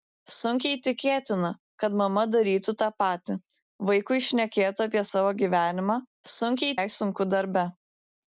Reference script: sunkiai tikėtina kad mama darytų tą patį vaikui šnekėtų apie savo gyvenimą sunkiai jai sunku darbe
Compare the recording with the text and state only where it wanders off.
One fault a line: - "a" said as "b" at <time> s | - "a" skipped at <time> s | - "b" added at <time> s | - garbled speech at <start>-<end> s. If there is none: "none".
none